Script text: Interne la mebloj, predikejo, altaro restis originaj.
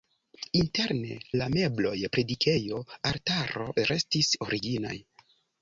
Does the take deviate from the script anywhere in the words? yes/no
no